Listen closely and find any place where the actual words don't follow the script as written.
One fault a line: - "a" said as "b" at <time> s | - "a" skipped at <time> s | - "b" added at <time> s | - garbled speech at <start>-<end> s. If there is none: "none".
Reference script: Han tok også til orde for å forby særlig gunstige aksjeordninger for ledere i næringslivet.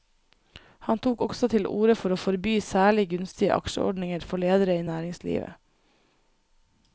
none